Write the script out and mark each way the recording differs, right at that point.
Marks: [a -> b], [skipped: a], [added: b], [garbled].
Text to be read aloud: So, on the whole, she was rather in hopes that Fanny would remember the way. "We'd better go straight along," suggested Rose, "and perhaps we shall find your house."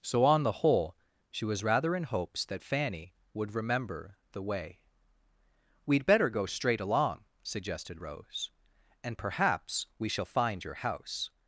So, on the whole, she was rather in hopes that Fanny would remember the way. "We'd better go straight along," suggested Rose, "and perhaps we shall find your house."